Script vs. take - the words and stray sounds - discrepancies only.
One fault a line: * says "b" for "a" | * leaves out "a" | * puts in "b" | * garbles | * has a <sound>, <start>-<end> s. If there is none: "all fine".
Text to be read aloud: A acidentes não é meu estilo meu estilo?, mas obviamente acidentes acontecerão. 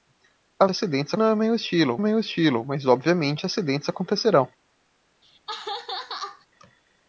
* has a laugh, 5.2-6.5 s